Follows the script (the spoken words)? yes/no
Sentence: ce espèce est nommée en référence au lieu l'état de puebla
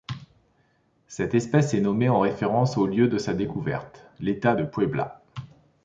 no